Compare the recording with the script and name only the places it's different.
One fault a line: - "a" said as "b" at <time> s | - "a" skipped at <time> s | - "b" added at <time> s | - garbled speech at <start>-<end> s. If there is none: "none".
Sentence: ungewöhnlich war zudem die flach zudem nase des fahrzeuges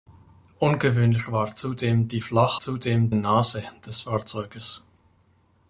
none